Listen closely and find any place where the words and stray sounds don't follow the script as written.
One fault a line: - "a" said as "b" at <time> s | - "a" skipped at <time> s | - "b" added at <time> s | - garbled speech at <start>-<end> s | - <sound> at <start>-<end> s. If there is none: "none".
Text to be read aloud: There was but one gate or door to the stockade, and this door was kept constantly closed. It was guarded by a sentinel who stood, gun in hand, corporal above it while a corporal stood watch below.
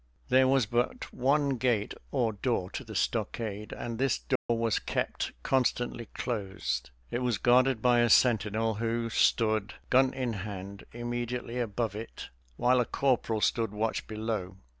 - dropout at 4.4-4.5 s
- "corporal" said as "immediately" at 10.9 s